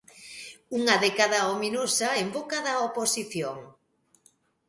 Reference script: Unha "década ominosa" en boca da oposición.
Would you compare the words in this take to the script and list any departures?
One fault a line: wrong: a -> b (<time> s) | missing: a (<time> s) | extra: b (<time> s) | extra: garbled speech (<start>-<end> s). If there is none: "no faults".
no faults